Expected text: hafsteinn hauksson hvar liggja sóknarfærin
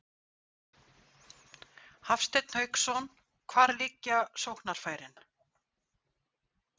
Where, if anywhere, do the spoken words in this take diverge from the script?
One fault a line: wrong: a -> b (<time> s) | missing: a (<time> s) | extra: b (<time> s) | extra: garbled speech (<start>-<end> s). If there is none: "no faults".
no faults